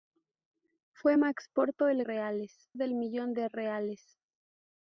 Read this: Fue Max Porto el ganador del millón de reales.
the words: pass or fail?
fail